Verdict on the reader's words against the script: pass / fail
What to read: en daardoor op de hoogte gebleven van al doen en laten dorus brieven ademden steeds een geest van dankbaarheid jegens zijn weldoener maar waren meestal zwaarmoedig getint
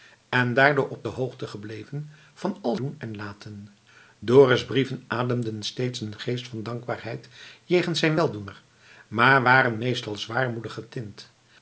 pass